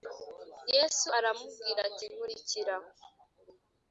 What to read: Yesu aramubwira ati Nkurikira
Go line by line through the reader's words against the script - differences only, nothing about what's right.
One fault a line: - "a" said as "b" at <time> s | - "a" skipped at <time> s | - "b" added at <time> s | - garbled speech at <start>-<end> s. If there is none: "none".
none